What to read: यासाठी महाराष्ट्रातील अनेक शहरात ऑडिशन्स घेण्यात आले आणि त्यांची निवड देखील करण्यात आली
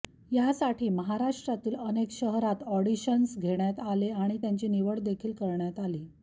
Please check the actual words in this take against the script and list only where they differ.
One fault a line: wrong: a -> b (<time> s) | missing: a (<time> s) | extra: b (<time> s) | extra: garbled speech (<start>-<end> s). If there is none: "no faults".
no faults